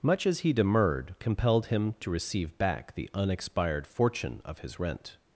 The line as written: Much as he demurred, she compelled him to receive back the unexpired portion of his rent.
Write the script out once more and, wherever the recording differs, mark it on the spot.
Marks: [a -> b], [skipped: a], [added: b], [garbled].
Much as he demurred, [skipped: she] compelled him to receive back the unexpired [portion -> fortune] of his rent.